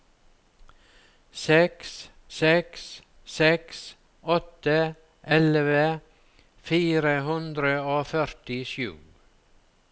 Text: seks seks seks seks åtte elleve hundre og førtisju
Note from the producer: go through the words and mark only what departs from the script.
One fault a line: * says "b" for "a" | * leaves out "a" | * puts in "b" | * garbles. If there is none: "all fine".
* leaves out "seks"
* puts in "fire"